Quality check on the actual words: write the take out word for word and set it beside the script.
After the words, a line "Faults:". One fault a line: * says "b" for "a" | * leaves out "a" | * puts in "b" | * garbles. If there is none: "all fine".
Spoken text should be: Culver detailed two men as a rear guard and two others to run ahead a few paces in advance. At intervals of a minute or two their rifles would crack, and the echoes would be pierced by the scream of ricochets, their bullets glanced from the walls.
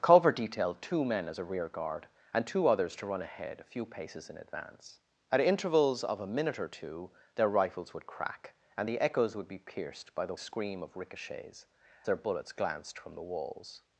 Culver detailed two men as a rear guard and two others to run ahead a few paces in advance. At intervals of a minute or two their rifles would crack, and the echoes would be pierced by the scream of ricochets, their bullets glanced from the walls.
Faults:
all fine